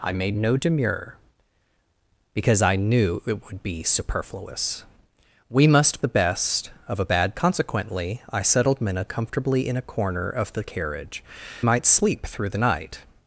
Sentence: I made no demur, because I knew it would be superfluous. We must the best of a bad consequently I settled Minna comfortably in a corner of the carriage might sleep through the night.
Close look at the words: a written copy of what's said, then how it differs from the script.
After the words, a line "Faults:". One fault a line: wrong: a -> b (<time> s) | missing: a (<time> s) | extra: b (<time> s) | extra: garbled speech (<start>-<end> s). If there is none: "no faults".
I made no demur, because I knew it would be superfluous. We must the best of a bad consequently I settled Minna comfortably in a corner of the carriage might sleep through the night.
Faults:
no faults